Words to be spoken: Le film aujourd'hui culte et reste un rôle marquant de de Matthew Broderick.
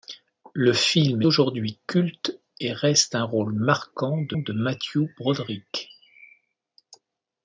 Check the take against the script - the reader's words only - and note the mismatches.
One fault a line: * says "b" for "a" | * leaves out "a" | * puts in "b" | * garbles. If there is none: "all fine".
all fine